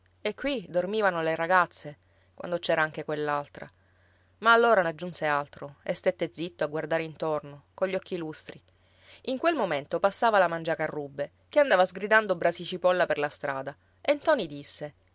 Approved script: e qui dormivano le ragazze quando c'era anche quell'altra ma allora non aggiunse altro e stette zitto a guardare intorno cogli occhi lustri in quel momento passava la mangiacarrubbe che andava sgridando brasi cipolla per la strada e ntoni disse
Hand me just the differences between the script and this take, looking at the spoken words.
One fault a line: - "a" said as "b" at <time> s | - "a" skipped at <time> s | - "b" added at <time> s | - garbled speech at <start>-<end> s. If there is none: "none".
- "non" skipped at 4.8 s